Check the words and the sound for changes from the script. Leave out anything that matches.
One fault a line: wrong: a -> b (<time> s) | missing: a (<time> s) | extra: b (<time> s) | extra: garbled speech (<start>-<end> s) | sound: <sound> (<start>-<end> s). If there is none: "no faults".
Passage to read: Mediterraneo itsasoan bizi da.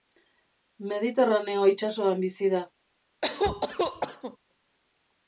sound: cough (3.2-4.4 s)